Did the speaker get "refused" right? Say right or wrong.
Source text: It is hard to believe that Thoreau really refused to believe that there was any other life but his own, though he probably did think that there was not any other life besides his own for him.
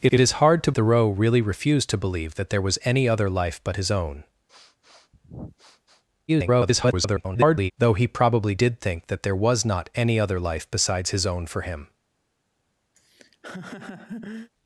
right